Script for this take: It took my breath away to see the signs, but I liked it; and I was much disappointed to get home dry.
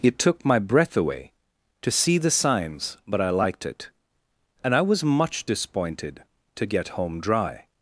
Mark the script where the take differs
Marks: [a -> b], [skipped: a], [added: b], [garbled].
It took my breath away to see the signs, but I liked it; and I was much disappointed to get home dry.